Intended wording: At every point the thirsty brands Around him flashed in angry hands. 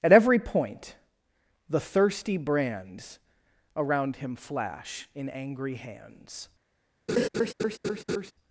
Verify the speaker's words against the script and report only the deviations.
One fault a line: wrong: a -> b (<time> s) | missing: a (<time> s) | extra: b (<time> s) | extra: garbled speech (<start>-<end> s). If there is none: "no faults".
wrong: flashed -> flash (4.3 s)